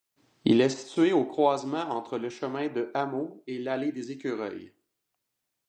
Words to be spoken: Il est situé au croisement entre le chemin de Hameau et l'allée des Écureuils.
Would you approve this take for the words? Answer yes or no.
yes